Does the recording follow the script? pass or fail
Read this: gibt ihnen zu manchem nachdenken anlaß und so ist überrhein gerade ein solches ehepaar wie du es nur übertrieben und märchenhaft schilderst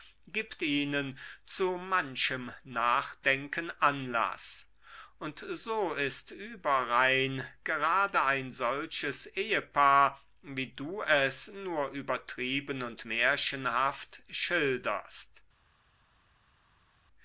pass